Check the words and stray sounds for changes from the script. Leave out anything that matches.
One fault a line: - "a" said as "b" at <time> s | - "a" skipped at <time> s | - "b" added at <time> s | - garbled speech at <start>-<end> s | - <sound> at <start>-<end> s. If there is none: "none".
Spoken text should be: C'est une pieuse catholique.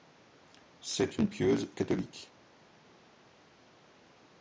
none